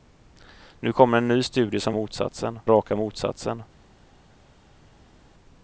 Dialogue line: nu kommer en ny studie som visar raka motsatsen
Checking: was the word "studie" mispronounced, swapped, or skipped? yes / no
no